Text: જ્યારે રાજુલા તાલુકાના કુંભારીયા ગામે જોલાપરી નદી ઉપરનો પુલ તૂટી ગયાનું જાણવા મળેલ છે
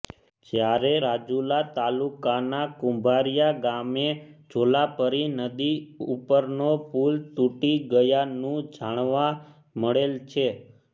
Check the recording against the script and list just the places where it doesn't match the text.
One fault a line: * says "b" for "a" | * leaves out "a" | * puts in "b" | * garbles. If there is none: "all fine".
all fine